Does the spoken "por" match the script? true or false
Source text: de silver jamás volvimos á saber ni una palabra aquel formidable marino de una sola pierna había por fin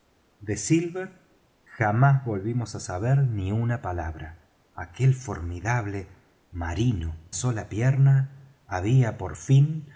true